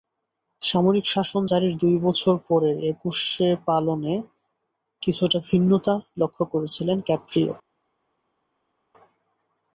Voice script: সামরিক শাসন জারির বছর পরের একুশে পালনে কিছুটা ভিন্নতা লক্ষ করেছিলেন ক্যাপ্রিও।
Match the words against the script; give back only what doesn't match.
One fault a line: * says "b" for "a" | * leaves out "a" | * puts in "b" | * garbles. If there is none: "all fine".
* puts in "দুই"